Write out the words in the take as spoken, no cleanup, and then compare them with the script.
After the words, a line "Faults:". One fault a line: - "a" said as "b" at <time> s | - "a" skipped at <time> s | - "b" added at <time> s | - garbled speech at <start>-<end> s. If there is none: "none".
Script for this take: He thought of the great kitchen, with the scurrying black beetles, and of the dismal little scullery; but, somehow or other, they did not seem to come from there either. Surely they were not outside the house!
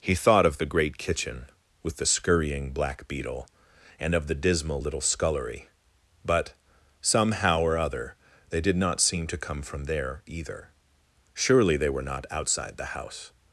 He thought of the great kitchen, with the scurrying black beetle, and of the dismal little scullery; but, somehow or other, they did not seem to come from there either. Surely they were not outside the house!
Faults:
- "beetles" said as "beetle" at 3.1 s